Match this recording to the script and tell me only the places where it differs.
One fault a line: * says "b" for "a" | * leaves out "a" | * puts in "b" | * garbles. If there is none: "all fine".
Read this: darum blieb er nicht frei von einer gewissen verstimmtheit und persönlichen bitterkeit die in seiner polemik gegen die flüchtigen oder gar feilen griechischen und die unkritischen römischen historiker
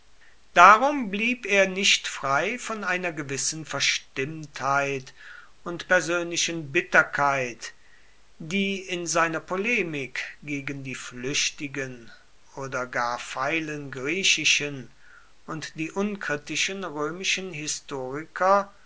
all fine